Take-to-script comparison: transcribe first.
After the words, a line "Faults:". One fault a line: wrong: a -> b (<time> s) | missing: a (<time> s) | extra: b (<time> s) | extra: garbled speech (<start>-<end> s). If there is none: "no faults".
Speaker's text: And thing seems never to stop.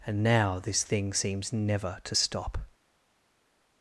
And now this thing seems never to stop.
Faults:
extra: now this (0.2 s)